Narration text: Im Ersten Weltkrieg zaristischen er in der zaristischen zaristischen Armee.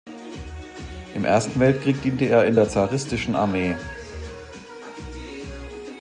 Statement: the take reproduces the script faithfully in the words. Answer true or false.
false